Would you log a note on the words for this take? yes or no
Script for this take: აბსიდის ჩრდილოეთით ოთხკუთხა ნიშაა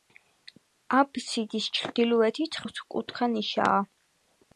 no